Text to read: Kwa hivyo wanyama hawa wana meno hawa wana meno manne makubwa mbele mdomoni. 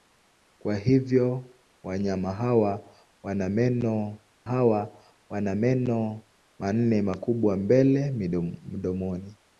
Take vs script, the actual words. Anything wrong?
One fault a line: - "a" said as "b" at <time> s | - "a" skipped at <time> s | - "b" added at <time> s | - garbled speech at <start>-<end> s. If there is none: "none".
none